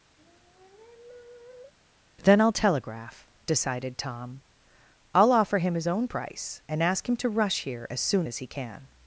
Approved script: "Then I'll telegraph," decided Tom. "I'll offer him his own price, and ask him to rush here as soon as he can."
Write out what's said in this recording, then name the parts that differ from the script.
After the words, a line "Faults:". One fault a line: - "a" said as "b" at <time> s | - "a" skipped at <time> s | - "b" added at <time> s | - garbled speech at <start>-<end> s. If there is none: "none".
"Then I'll telegraph," decided Tom. "I'll offer him his own price, and ask him to rush here as soon as he can."
Faults:
none